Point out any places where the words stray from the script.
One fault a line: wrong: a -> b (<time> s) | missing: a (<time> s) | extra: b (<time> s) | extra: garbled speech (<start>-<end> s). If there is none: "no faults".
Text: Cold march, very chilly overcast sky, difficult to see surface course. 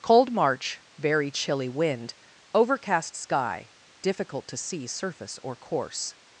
extra: wind (1.7 s)
extra: or (5.4 s)